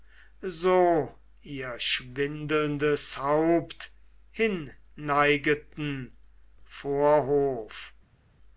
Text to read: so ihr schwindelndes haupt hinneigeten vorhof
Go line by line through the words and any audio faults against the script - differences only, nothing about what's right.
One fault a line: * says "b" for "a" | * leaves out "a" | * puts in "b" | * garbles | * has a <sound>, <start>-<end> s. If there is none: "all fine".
all fine